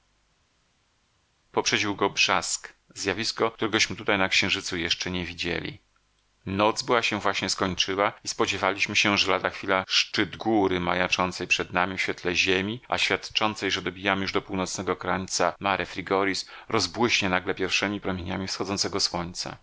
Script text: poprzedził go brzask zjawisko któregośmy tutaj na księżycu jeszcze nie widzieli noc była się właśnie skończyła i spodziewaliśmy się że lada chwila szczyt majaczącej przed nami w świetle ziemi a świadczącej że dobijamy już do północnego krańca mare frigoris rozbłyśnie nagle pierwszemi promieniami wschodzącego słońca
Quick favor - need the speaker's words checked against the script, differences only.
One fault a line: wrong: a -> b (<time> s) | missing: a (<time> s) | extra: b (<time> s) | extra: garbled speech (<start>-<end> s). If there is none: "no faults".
extra: góry (10.4 s)